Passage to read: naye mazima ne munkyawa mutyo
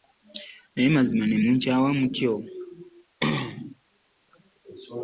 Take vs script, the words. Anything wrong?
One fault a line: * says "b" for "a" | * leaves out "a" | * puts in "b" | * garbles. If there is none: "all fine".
all fine